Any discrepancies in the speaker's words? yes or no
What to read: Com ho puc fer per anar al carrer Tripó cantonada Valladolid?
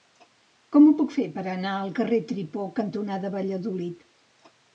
no